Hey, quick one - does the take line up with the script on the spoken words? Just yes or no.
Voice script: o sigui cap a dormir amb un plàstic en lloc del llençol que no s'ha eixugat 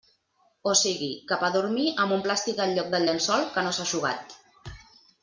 yes